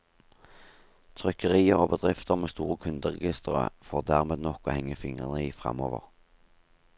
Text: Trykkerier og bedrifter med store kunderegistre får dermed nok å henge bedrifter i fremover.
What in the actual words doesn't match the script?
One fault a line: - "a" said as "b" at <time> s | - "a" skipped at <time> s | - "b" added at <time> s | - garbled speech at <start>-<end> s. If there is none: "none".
- "bedrifter" said as "fingrene" at 5.0 s